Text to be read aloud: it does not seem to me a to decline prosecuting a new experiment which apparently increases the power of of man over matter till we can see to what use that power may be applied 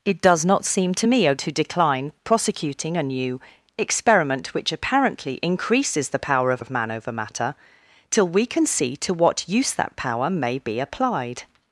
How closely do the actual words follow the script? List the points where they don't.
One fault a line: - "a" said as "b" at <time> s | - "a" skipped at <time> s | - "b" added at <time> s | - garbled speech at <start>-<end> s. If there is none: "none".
none